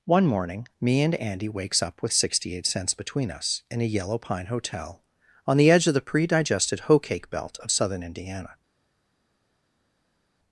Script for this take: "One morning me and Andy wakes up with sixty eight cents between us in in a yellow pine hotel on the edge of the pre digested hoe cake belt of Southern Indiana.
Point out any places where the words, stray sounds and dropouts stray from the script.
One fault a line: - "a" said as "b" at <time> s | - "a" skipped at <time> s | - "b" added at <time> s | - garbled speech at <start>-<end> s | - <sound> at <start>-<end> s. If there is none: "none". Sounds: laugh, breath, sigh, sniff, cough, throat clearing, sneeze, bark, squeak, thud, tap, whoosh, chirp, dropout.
- "in" skipped at 3.8 s